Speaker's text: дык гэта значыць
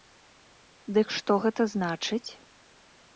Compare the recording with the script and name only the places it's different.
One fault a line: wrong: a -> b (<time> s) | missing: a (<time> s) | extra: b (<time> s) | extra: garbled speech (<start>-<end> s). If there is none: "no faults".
extra: што (1.2 s)